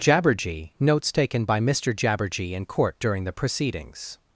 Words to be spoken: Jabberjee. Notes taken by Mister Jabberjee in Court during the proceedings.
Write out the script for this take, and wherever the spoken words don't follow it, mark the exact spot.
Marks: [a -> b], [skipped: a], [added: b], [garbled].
Jabberjee. Notes taken by Mister Jabberjee in Court during the proceedings.